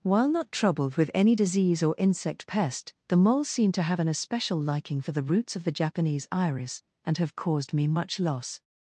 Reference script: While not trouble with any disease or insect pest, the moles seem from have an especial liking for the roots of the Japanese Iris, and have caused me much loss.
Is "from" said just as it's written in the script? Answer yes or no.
no